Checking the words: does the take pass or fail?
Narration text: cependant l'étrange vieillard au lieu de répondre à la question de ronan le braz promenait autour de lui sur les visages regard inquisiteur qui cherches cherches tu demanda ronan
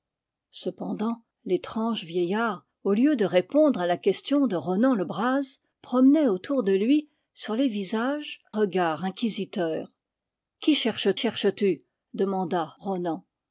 pass